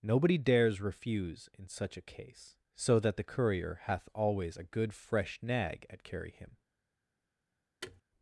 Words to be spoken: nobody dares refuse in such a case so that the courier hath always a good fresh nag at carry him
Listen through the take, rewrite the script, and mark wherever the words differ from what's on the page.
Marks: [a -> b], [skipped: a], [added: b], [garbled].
nobody dares refuse in such a case so that the courier hath always a good fresh nag at carry him